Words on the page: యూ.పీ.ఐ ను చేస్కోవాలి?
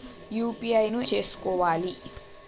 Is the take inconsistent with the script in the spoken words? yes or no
no